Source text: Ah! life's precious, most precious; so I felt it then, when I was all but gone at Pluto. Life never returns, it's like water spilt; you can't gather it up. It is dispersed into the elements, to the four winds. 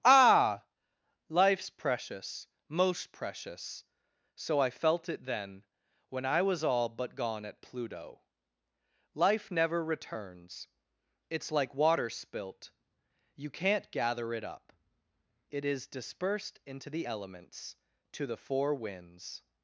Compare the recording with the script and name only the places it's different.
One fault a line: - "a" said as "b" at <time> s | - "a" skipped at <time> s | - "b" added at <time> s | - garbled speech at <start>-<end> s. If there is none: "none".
none